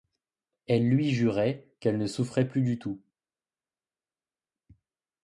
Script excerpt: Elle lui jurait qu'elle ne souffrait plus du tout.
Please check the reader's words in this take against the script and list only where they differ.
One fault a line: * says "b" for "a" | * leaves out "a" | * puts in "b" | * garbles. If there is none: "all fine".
all fine